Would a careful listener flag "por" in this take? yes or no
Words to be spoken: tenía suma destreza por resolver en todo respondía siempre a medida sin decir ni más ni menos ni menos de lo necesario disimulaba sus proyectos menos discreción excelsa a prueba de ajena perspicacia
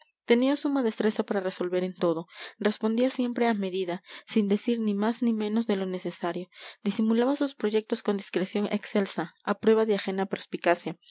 yes